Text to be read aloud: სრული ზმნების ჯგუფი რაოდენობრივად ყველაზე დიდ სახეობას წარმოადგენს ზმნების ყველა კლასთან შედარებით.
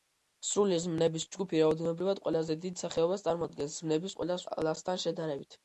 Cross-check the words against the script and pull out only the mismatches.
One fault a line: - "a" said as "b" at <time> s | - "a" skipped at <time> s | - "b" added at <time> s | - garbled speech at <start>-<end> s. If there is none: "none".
none